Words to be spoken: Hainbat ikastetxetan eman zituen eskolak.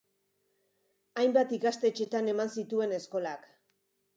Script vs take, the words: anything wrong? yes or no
no